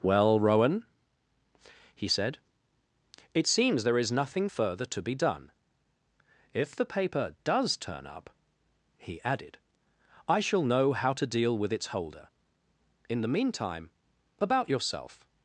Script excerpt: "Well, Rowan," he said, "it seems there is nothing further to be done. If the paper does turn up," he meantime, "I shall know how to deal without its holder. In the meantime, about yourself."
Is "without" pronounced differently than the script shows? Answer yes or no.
yes